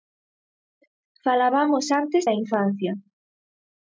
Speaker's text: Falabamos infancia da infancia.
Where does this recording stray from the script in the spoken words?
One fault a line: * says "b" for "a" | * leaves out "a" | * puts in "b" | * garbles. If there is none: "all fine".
* says "antes" for "infancia"